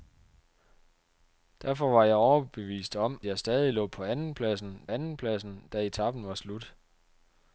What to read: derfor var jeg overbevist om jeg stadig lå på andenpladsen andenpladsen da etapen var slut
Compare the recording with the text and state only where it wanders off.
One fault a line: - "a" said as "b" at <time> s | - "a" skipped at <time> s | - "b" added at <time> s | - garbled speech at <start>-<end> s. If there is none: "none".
none